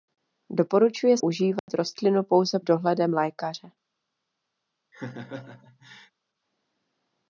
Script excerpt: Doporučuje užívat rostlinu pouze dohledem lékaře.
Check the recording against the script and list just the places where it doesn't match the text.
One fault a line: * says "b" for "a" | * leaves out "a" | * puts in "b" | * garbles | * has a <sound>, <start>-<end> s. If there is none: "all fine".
* has a dropout, 1.6-1.7 s
* has a laugh, 4.9-6.1 s